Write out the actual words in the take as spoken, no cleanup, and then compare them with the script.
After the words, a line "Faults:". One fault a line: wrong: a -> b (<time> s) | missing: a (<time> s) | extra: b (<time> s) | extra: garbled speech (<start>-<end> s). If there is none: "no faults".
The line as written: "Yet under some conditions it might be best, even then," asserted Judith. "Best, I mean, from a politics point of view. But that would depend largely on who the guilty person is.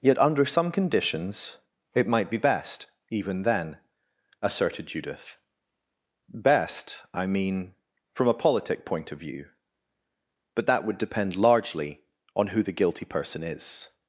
"Yet under some conditions it might be best, even then," asserted Judith. "Best, I mean, from a politic point of view. But that would depend largely on who the guilty person is.
Faults:
wrong: politics -> politic (8.3 s)